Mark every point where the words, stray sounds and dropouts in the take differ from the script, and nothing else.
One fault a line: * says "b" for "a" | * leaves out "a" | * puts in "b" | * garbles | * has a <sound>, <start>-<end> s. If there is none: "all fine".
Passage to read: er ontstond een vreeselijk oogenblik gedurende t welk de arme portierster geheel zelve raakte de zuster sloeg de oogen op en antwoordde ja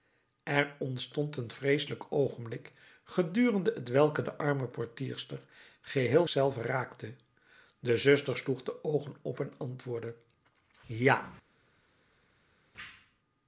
all fine